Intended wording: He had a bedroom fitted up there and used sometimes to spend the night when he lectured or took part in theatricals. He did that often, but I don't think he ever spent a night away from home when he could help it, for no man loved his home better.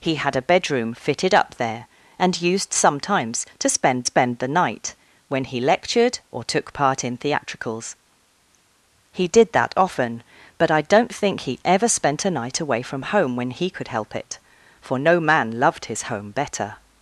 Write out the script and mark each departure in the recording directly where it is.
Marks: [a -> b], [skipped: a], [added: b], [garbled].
He had a bedroom fitted up there and used sometimes to spend [added: spend] the night when he lectured or took part in theatricals. He did that often, but I don't think he ever spent a night away from home when he could help it, for no man loved his home better.